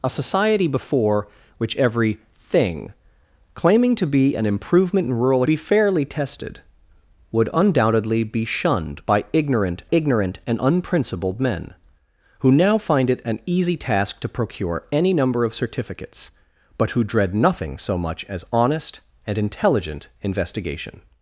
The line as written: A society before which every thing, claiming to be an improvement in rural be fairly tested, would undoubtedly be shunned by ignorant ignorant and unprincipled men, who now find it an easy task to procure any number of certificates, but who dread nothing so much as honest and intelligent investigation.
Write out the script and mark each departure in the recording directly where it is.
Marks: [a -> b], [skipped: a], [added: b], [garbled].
A society before which every thing, claiming to be an improvement in rural be fairly tested, would undoubtedly be shunned by ignorant ignorant and unprincipled men, who now find it an easy task to procure any number of certificates, but who dread nothing so much as honest and intelligent investigation.